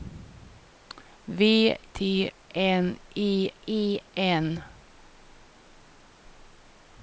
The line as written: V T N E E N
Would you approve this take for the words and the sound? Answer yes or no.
yes